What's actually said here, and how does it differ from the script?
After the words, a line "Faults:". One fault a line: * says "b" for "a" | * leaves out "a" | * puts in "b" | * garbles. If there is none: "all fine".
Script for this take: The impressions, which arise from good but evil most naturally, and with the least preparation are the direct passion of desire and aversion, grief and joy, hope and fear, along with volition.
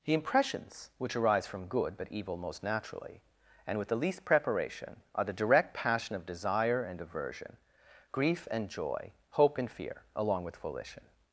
The impressions, which arise from good but evil most naturally, and with the least preparation are the direct passion of desire and aversion, grief and joy, hope and fear, along with volition.
Faults:
all fine